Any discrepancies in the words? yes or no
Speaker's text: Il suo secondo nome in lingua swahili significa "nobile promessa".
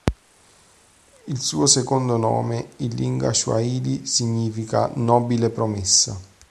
no